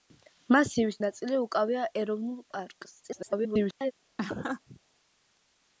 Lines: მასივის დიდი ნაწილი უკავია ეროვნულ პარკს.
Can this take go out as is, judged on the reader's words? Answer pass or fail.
fail